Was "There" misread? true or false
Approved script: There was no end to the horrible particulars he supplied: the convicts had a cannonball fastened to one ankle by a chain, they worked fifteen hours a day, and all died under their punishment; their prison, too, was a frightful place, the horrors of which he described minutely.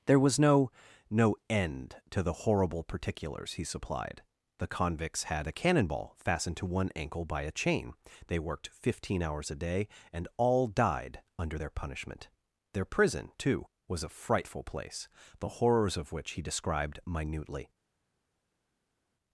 false